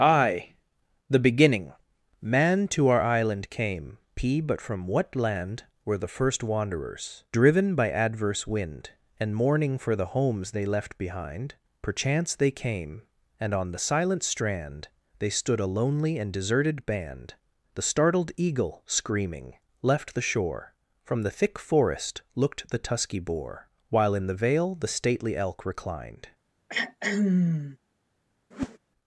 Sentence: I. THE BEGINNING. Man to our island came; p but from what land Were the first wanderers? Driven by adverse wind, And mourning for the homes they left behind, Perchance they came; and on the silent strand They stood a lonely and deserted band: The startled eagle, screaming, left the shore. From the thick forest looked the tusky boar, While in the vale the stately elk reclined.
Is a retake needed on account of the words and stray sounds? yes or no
yes